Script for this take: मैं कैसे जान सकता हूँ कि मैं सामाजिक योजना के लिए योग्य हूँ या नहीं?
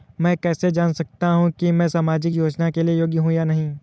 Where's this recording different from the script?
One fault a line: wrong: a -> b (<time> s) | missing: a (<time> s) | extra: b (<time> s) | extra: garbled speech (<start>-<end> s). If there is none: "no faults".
no faults